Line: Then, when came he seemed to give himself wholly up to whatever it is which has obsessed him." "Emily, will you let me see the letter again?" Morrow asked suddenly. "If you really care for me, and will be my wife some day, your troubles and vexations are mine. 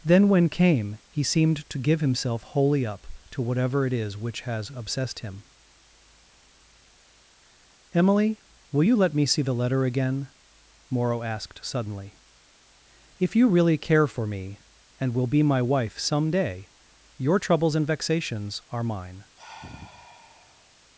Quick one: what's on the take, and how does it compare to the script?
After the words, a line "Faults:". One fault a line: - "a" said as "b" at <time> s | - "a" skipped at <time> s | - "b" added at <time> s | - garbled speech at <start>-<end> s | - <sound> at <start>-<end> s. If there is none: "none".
Then, when came he seemed to give himself wholly up to whatever it is which has obsessed him." "Emily, will you let me see the letter again?" Morrow asked suddenly. "If you really care for me, and will be my wife some day, your troubles and vexations are mine.
Faults:
- sigh at 19.4-20.8 s